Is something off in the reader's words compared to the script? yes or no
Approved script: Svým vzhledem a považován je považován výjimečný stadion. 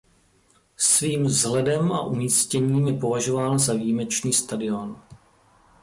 yes